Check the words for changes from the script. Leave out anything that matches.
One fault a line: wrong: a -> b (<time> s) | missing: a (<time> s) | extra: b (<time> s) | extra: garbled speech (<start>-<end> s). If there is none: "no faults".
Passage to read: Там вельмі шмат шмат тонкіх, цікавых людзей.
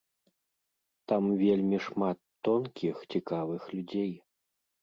missing: шмат (2.2 s)